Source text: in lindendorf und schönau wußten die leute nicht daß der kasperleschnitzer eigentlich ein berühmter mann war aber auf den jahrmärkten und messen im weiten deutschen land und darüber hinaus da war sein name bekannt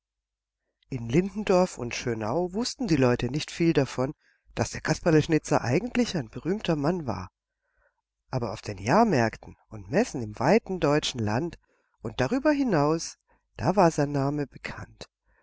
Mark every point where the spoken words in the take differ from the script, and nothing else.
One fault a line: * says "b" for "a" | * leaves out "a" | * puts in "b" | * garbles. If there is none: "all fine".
* puts in "viel davon"